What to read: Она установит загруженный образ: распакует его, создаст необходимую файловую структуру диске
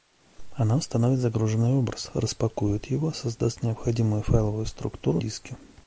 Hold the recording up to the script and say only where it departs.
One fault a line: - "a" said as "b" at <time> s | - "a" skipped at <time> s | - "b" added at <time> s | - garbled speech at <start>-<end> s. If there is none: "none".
none